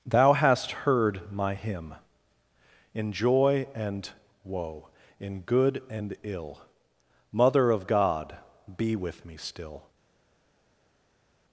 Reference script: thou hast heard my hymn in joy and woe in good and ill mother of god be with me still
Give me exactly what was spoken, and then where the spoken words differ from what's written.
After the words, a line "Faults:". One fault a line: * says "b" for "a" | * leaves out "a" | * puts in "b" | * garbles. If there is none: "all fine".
thou hast heard my hymn in joy and woe in good and ill mother of god be with me still
Faults:
all fine